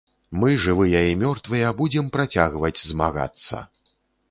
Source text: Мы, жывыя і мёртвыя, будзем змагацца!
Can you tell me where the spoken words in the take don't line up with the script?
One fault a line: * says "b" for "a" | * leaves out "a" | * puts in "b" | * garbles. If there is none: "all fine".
* puts in "працягваць"